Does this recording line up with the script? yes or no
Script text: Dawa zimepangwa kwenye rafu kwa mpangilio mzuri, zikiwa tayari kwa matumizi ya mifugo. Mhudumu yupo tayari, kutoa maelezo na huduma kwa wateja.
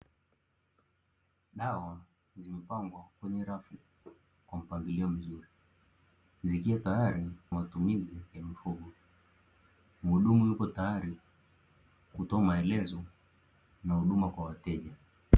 no